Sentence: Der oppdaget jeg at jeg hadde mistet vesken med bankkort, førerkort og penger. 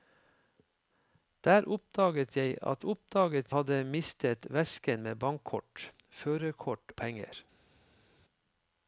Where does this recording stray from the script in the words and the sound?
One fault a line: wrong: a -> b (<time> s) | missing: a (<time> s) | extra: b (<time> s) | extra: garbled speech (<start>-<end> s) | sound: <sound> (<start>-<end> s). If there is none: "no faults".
wrong: jeg -> oppdaget (2.8 s)
missing: og (6.9 s)